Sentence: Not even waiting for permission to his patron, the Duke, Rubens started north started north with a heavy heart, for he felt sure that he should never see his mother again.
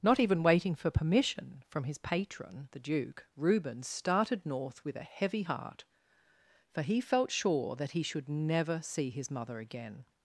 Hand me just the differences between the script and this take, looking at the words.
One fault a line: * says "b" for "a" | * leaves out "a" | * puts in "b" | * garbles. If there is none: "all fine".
* says "from" for "to"
* leaves out "started north"